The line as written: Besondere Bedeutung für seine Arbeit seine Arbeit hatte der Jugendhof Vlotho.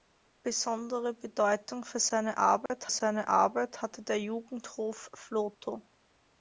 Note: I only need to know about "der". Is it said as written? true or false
true